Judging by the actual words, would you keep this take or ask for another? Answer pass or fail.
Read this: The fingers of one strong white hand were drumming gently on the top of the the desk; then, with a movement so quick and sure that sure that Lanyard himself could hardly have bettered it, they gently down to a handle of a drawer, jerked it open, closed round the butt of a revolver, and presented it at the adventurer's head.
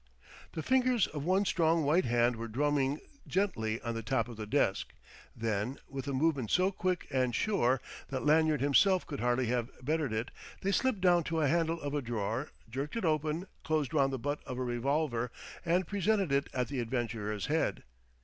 fail